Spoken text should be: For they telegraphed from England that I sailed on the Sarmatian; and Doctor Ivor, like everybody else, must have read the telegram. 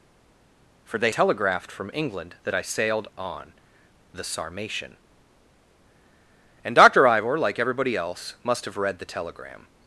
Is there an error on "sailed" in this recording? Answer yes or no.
no